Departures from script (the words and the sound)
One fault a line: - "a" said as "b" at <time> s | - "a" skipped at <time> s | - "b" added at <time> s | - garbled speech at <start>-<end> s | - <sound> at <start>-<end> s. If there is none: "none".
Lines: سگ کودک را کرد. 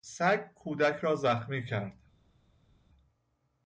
- "زخمی" added at 1.1 s